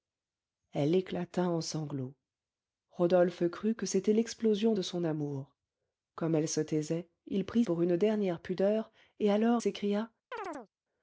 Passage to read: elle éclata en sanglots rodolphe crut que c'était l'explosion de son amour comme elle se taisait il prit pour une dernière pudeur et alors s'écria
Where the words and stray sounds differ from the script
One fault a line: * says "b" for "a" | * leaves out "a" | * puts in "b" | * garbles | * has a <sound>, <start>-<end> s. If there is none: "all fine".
* has a chirp, 10.3-10.7 s